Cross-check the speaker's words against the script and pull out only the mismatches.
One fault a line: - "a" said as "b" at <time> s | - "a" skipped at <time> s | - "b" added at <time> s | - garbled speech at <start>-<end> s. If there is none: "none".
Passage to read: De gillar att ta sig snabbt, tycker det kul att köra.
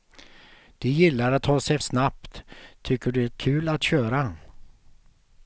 none